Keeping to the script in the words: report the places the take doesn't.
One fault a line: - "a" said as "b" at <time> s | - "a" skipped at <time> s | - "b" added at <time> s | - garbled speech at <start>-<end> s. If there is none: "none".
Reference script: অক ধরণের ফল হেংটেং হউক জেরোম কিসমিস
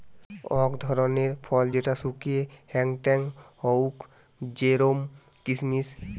- "যেটা শুকিয়ে" added at 1.7 s